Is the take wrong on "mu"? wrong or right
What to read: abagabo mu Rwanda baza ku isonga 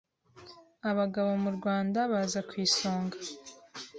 right